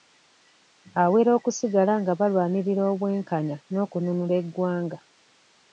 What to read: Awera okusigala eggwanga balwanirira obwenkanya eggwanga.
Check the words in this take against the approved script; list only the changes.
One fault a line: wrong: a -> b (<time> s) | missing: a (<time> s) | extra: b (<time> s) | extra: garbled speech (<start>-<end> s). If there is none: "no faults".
wrong: eggwanga -> nga (2.0 s)
extra: n'okununula (3.7 s)